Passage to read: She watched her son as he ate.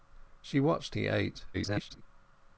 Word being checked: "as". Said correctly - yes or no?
no